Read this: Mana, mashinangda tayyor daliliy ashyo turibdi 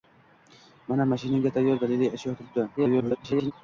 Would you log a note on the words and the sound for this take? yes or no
yes